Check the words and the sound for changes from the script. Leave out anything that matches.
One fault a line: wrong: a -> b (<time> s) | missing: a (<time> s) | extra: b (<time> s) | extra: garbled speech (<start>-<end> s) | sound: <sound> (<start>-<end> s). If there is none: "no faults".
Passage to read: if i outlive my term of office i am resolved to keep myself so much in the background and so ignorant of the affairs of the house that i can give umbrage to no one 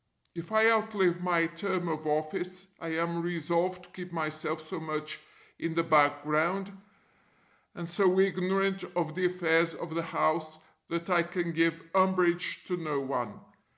no faults